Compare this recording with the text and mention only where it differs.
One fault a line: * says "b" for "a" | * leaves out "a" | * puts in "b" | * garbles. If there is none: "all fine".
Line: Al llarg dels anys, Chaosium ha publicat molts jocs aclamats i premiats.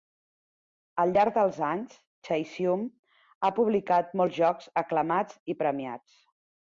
all fine